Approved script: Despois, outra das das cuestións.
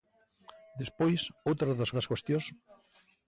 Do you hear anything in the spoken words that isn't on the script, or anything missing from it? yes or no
no